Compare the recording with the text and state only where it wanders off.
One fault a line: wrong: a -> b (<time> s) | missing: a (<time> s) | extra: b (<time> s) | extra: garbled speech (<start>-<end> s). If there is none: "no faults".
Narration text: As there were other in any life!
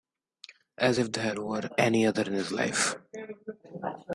extra: if (1.0 s)
extra: any (1.8 s)
wrong: any -> his (2.3 s)